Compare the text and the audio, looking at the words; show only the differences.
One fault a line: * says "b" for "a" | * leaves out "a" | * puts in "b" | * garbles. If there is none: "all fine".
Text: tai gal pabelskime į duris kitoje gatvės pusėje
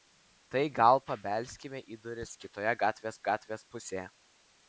* puts in "gatvės"